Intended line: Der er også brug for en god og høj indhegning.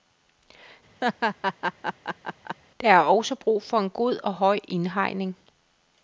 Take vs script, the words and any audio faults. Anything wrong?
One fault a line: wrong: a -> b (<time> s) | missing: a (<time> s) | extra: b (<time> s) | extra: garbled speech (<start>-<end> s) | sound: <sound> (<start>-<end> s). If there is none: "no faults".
sound: laugh (1.0-2.6 s)